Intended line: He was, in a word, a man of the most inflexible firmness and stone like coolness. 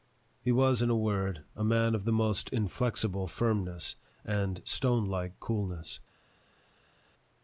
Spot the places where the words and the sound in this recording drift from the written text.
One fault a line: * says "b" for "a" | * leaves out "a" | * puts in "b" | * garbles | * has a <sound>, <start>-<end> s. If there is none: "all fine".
all fine